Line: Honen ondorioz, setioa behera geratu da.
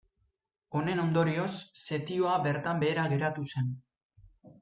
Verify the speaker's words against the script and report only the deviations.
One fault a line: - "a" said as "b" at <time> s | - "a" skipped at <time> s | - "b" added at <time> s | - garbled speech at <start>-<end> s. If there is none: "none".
- "bertan" added at 2.5 s
- "da" said as "zen" at 3.6 s